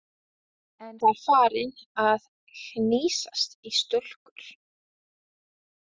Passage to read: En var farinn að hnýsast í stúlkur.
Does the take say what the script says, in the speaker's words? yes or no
yes